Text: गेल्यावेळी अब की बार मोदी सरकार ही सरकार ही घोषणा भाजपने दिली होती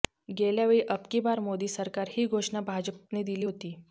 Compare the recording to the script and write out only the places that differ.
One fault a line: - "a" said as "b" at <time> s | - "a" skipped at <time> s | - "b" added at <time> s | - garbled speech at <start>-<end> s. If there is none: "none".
- "सरकार ही" skipped at 2.3 s